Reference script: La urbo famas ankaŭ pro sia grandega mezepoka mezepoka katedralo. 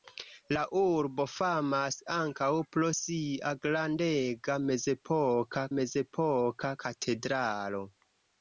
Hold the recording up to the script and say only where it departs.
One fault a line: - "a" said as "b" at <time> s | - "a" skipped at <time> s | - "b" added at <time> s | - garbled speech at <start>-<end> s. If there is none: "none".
none